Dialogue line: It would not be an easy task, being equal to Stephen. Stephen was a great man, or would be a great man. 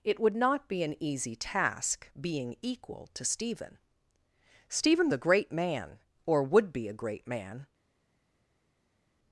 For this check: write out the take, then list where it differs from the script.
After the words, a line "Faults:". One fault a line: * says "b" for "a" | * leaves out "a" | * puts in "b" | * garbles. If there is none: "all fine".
It would not be an easy task, being equal to Stephen. Stephen a great man, or would be a great man.
Faults:
* leaves out "was"